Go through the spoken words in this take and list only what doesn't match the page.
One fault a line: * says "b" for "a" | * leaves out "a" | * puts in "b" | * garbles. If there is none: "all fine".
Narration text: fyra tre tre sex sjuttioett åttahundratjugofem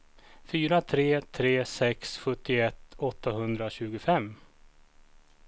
all fine